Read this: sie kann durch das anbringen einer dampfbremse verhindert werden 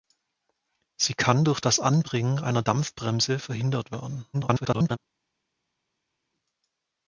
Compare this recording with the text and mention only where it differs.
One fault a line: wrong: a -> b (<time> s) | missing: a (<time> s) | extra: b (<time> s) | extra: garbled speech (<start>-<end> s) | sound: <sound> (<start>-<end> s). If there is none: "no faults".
extra: garbled speech (4.3-5.0 s)